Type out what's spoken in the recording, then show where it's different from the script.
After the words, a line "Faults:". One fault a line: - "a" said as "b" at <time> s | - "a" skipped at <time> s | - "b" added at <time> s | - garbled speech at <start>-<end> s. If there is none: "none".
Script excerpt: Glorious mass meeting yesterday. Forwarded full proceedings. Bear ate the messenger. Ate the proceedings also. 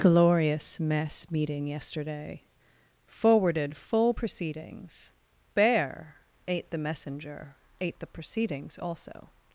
Glorious mess meeting yesterday. Forwarded full proceedings. Bear ate the messenger. Ate the proceedings also.
Faults:
- "mass" said as "mess" at 0.8 s